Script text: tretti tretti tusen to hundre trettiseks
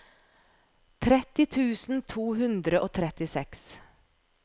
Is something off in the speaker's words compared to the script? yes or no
yes